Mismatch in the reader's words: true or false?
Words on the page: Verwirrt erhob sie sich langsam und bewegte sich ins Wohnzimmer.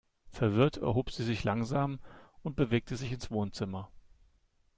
false